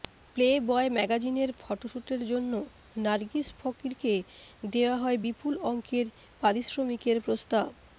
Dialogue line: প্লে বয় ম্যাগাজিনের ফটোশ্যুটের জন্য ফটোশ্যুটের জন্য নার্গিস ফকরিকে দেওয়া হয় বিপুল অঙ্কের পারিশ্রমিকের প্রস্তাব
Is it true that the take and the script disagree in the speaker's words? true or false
true